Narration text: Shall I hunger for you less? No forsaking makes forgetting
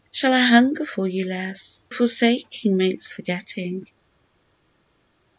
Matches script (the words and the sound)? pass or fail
fail